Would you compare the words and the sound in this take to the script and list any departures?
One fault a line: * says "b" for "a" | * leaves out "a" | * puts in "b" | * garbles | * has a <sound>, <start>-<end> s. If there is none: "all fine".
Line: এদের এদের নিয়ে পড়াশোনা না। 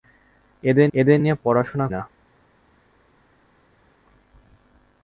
all fine